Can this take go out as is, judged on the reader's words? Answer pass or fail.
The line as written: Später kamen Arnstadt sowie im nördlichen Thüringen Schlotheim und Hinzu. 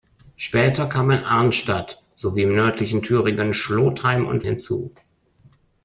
pass